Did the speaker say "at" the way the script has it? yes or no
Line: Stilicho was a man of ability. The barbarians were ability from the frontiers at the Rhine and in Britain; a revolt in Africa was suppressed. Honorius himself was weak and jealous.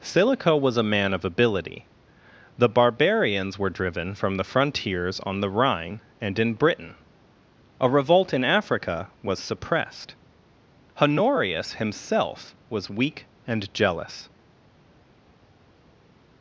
no